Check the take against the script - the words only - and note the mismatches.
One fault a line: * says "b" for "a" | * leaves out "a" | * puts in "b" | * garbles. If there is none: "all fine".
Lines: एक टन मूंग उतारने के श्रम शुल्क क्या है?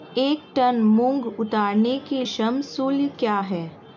all fine